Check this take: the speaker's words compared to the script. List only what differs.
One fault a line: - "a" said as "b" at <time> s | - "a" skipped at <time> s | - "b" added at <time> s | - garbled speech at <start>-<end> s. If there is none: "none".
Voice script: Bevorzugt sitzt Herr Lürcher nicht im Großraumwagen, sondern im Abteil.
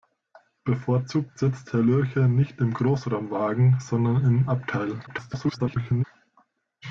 - garbled speech at 5.1-6.0 s